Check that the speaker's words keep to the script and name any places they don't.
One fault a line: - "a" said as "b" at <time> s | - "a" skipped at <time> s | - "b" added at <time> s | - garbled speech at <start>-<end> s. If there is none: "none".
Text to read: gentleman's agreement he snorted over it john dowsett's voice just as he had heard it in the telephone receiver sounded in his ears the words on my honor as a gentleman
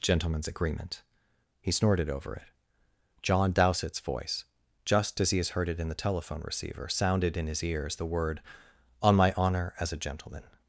- "had" said as "has" at 5.4 s
- "words" said as "word" at 8.1 s